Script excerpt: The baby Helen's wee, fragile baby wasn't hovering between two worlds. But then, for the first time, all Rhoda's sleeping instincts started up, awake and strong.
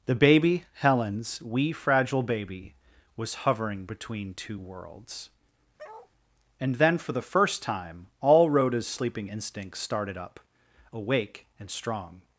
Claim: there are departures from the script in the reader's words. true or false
true